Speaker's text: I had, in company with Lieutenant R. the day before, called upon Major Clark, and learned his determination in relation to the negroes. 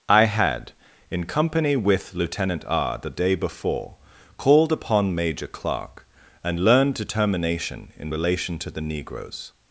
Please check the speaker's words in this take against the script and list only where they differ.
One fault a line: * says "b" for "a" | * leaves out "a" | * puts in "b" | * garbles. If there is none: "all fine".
* leaves out "his"